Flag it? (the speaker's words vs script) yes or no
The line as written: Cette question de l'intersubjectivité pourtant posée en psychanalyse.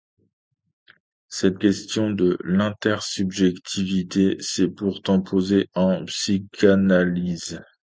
yes